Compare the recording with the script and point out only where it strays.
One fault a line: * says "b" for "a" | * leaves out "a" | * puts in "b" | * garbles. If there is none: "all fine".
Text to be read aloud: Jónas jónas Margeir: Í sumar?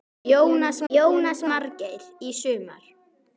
all fine